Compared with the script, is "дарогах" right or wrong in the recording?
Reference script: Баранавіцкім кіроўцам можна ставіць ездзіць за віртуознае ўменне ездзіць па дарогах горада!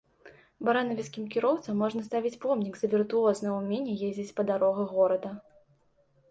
right